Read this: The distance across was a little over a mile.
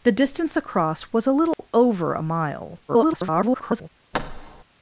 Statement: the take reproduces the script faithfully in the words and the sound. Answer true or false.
false